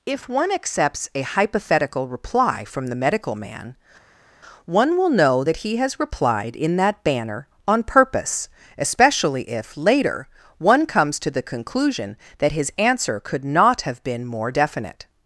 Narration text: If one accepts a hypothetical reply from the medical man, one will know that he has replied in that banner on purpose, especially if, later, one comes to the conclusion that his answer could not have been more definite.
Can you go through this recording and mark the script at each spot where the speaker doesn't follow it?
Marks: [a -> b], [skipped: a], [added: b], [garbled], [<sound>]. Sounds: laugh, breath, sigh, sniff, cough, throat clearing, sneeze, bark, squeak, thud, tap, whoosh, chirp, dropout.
If one accepts a hypothetical reply from the medical man, one will know that he has replied in that banner on purpose, especially if, later, one comes to the conclusion that his answer could not have been more definite.